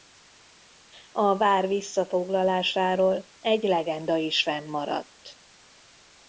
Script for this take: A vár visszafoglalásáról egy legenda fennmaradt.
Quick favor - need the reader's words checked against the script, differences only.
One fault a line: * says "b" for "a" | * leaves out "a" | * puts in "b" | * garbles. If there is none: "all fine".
* puts in "is"